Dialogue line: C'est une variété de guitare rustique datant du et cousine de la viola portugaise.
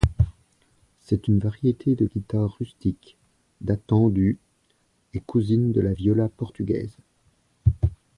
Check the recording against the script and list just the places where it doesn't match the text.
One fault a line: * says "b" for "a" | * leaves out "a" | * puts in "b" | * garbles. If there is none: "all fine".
all fine